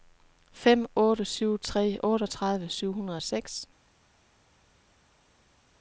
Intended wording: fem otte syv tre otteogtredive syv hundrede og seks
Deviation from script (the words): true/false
false